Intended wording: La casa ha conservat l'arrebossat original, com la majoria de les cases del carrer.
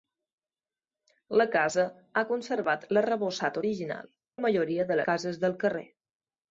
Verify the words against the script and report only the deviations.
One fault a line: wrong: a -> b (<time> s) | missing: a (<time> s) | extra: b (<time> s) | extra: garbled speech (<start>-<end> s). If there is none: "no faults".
missing: com (4.1 s)
missing: les (5.0 s)